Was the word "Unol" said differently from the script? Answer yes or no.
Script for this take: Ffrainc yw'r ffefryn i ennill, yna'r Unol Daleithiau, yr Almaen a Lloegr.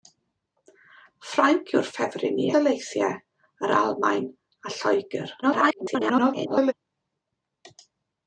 yes